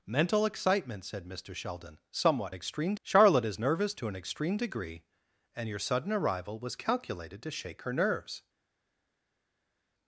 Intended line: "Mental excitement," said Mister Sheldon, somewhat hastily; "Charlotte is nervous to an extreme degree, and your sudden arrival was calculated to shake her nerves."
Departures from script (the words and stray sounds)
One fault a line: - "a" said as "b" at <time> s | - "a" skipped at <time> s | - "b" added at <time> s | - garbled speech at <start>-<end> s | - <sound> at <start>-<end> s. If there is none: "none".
- "hastily" said as "extreme" at 2.5 s